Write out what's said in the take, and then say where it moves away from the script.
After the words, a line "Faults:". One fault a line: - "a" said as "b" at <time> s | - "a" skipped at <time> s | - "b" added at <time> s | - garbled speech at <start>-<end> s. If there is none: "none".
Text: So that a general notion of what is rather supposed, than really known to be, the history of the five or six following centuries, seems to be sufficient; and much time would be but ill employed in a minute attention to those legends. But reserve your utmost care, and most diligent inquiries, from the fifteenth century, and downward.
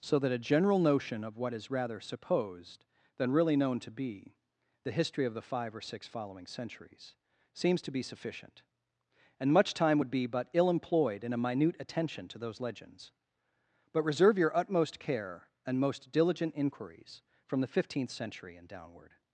So that a general notion of what is rather supposed, than really known to be, the history of the five or six following centuries, seems to be sufficient; and much time would be but ill employed in a minute attention to those legends. But reserve your utmost care, and most diligent inquiries, from the fifteenth century, and downward.
Faults:
none